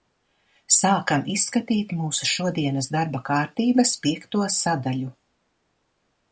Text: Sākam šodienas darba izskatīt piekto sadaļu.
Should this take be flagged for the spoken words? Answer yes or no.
yes